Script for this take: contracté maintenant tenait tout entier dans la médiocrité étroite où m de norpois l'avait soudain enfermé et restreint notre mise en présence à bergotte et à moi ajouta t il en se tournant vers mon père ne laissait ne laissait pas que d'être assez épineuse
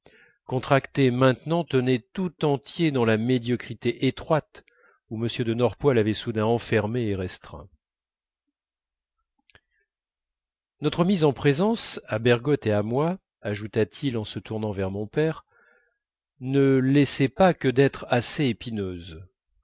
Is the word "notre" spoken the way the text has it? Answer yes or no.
yes